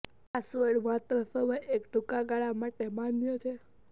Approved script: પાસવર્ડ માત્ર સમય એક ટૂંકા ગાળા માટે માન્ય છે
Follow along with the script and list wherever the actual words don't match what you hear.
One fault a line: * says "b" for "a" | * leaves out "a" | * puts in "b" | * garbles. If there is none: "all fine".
all fine